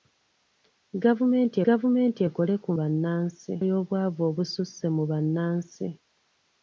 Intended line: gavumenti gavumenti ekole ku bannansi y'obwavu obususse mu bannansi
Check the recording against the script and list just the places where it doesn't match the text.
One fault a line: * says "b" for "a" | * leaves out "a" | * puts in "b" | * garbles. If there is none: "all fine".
all fine